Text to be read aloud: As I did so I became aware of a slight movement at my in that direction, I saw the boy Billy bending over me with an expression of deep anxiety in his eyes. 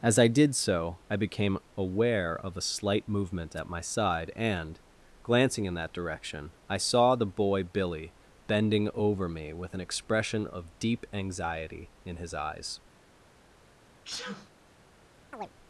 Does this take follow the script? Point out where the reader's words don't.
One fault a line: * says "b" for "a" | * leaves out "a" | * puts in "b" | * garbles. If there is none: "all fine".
* puts in "side and glancing"